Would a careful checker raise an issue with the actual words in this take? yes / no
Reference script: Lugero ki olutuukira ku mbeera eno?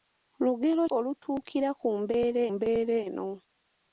yes